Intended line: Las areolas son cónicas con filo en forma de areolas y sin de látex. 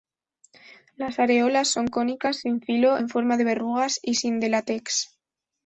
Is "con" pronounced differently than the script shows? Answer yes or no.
yes